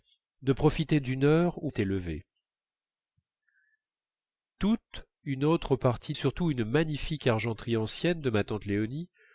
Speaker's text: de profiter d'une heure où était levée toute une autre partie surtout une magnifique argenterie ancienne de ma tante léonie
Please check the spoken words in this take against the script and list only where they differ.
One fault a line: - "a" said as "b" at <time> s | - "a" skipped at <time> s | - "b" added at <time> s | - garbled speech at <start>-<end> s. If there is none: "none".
none